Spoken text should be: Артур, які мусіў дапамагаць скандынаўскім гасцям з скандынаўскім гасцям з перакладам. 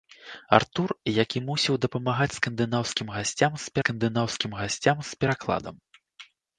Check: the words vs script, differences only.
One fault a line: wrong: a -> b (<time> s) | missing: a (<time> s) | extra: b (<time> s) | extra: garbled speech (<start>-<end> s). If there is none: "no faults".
no faults